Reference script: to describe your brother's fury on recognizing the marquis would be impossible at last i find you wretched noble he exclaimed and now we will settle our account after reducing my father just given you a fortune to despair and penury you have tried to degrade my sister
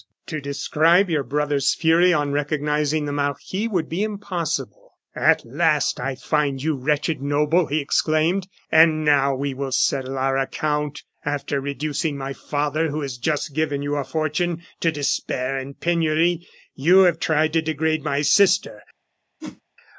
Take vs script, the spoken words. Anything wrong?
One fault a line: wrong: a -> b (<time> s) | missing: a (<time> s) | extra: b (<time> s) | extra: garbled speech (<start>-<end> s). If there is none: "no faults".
extra: who has (12.9 s)